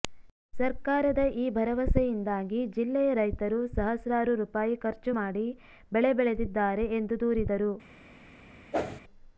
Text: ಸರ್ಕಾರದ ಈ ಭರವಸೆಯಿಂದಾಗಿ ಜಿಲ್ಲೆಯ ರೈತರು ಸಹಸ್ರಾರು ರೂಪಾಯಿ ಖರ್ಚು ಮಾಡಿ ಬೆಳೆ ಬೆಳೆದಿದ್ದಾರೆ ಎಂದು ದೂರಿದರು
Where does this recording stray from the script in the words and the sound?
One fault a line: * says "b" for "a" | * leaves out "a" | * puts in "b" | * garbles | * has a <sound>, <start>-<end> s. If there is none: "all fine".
* has a whoosh, 8.7-9.0 s